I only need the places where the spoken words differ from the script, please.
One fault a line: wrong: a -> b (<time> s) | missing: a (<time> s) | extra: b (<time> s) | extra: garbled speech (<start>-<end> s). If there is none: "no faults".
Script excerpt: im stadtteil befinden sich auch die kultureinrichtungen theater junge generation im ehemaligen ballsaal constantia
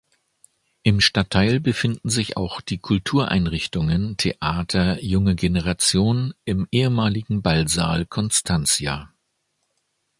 no faults